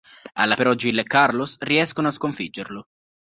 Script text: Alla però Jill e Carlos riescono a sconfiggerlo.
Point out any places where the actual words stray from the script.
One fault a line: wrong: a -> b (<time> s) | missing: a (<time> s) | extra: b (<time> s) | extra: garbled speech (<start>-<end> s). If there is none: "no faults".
no faults